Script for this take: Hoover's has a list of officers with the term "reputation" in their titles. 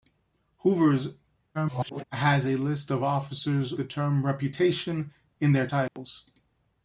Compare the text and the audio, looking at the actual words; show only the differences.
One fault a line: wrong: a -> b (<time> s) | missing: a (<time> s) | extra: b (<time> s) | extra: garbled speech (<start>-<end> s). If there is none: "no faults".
extra: garbled speech (1.5-2.0 s)
missing: with (3.7 s)